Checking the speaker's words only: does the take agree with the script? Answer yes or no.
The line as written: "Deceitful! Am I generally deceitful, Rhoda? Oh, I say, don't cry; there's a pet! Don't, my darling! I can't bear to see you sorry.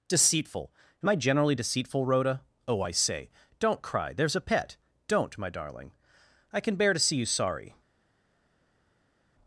no